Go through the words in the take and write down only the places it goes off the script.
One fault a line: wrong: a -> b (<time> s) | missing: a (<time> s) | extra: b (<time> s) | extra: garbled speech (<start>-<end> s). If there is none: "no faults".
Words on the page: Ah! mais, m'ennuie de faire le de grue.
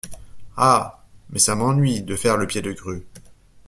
extra: ça (1.4 s)
extra: pied (2.4 s)